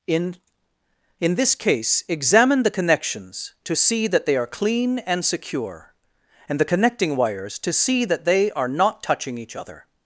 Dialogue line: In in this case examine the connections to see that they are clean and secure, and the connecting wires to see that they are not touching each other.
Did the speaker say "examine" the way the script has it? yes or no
yes